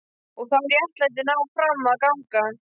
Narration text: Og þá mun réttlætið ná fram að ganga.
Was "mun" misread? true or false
true